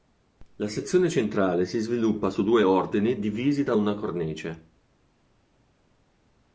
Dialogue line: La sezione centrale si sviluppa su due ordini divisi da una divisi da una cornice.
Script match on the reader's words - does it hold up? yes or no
no